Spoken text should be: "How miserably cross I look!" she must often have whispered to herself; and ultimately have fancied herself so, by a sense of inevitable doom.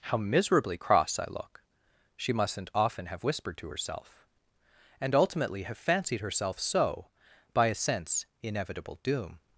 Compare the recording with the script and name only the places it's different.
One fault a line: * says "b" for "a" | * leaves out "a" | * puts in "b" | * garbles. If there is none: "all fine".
* says "mustn't" for "must"
* leaves out "of"